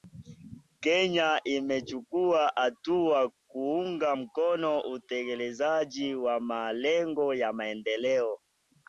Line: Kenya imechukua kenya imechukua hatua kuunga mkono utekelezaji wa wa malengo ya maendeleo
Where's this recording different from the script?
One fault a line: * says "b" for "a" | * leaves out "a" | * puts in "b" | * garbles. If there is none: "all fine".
* leaves out "kenya imechukua"
* leaves out "wa"